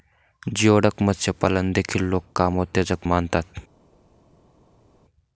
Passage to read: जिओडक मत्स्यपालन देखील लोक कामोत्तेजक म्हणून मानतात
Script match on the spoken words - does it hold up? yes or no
no